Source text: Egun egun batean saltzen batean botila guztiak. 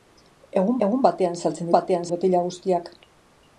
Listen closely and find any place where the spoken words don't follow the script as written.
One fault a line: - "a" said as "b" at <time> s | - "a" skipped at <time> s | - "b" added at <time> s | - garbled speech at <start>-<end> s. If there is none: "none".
none